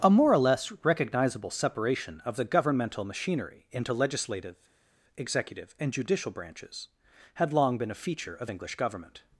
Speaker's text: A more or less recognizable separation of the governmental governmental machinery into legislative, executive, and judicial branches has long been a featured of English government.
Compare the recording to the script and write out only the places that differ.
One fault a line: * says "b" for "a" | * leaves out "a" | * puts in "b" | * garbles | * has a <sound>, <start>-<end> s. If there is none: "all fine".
* leaves out "governmental"
* says "had" for "has"
* says "feature" for "featured"